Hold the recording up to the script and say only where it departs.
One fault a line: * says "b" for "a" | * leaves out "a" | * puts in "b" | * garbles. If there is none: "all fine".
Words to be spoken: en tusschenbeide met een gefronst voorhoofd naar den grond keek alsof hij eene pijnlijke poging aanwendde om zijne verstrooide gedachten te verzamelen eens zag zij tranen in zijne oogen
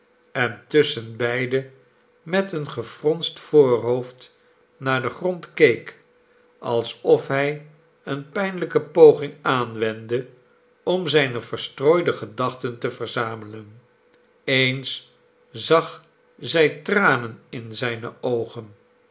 all fine